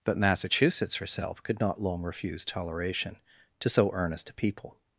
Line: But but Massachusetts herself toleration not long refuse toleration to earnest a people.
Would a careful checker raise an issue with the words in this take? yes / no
yes